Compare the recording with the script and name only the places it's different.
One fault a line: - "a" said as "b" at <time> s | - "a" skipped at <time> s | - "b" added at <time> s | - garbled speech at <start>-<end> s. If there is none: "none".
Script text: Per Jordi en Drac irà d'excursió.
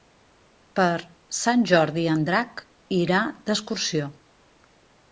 - "Sant" added at 1.4 s